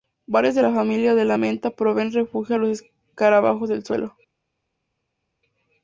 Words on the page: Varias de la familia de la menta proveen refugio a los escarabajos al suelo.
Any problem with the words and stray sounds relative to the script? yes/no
yes